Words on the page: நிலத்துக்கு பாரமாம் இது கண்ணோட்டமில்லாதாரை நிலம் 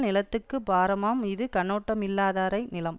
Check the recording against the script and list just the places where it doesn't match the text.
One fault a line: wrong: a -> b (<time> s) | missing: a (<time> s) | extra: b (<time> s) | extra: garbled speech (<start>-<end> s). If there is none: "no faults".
no faults